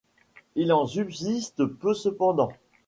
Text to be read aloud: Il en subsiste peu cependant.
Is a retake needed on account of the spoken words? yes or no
no